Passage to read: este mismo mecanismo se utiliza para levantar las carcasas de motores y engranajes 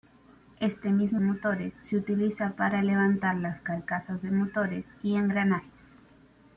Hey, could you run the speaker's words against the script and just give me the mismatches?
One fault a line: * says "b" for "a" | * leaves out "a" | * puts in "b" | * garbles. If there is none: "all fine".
* says "motores" for "mecanismo"